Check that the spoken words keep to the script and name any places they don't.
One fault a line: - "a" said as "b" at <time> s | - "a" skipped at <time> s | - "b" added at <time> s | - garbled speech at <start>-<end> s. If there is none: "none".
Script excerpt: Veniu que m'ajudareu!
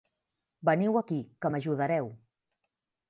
- "aquí" added at 1.0 s